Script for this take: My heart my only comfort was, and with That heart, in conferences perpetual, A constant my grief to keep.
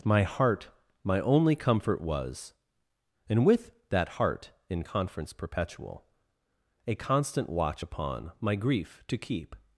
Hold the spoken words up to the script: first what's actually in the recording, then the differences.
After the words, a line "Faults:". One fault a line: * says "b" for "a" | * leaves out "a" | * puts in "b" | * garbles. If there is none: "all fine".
My heart my only comfort was, and with That heart, in conference perpetual, A constant watch upon my grief to keep.
Faults:
* says "conference" for "conferences"
* puts in "watch upon"